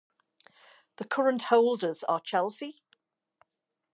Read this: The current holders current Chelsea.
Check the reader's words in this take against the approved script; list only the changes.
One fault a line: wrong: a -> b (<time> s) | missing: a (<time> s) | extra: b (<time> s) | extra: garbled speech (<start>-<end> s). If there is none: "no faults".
wrong: current -> are (2.1 s)